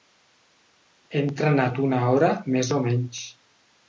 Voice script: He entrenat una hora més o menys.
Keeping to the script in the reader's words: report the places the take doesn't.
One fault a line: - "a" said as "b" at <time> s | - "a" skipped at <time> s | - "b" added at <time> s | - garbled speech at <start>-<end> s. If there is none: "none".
none